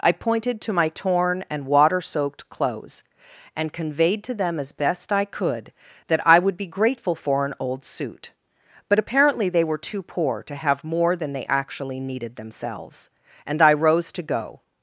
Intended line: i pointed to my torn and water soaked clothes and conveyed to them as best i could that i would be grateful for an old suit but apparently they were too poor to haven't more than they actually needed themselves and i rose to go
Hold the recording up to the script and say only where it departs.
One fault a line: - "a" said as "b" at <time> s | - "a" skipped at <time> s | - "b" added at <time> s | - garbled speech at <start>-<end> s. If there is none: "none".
- "haven't" said as "have" at 10.5 s